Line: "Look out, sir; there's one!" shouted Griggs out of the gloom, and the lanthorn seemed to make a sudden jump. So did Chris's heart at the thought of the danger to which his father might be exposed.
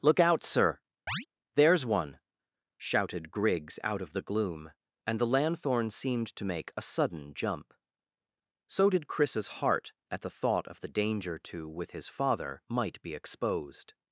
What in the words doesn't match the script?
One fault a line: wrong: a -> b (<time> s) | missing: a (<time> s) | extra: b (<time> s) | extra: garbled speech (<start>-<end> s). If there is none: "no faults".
wrong: which -> with (11.7 s)